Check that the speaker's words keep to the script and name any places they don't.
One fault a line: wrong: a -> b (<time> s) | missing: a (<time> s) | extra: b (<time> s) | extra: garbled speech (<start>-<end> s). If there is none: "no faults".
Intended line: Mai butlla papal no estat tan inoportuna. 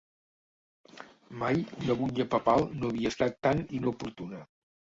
extra: una (1.8 s)
extra: havia (2.9 s)